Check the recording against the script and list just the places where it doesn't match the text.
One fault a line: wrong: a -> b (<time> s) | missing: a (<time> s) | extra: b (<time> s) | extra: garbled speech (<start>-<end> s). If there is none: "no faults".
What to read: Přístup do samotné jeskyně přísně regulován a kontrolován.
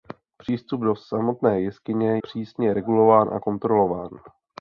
no faults